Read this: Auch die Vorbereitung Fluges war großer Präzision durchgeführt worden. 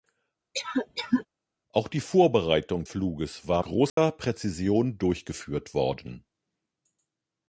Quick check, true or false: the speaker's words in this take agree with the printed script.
true